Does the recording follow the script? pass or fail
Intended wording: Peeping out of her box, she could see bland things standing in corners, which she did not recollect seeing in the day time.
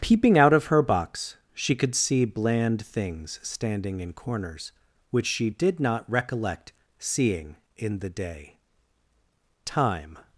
pass